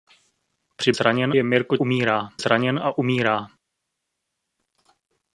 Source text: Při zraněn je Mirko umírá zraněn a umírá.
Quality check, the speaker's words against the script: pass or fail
pass